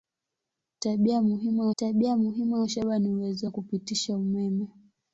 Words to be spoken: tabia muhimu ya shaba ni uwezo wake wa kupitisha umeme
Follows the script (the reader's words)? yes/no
no